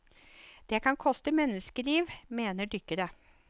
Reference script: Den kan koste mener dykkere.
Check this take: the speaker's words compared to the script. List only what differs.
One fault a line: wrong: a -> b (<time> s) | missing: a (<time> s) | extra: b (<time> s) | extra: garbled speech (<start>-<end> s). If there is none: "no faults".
wrong: Den -> Det (0.7 s)
extra: menneskeliv (1.3 s)